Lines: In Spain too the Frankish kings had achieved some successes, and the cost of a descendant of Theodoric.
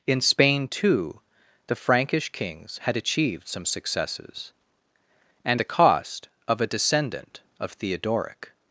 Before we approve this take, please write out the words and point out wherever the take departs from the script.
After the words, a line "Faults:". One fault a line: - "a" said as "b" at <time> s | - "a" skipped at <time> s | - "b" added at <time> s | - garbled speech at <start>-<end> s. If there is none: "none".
In Spain too the Frankish kings had achieved some successes, and the cost of a descendant of Theodoric.
Faults:
none